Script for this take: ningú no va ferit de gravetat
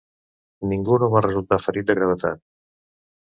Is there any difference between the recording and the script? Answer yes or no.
yes